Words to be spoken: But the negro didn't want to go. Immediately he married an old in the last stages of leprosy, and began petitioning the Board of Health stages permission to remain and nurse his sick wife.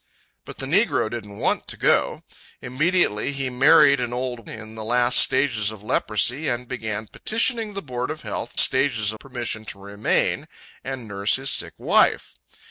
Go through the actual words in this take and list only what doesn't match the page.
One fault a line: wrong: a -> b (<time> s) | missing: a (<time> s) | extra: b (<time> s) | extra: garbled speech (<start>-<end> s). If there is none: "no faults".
no faults